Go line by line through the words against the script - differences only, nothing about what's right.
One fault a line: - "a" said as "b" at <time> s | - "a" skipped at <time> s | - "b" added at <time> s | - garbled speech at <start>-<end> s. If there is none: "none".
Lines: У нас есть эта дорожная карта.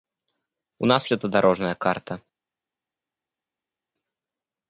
- "есть" skipped at 1.1 s